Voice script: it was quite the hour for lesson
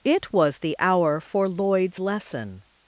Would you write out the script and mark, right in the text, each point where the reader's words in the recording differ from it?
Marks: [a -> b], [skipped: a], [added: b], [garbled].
it was [skipped: quite] the hour for [added: lloyd's] lesson